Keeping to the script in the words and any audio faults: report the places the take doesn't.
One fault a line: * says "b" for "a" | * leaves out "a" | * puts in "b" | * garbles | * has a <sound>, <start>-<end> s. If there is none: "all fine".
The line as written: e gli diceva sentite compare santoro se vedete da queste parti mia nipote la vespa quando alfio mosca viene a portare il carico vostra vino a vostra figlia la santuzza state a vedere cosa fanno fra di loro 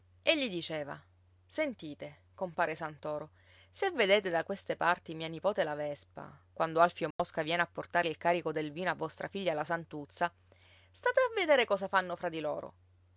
* has a dropout, 7.1-7.2 s
* says "del" for "vostra"